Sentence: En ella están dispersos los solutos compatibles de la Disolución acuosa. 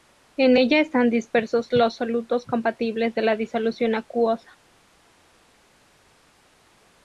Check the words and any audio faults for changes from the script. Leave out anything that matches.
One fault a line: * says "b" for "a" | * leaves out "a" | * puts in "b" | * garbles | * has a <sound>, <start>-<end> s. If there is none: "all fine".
all fine